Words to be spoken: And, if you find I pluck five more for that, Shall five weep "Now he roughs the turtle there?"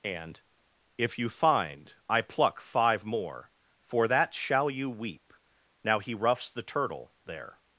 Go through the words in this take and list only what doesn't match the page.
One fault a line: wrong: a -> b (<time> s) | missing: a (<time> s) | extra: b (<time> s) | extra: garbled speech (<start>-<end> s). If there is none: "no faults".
wrong: five -> you (4.7 s)